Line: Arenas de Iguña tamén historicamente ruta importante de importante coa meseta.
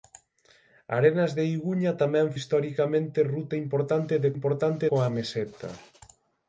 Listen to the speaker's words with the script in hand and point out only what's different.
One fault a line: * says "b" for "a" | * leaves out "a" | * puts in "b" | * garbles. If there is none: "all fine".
all fine